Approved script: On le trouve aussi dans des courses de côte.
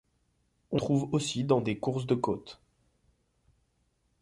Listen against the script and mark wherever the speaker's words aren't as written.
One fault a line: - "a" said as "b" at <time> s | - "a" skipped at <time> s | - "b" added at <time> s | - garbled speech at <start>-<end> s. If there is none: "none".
- "le" skipped at 0.8 s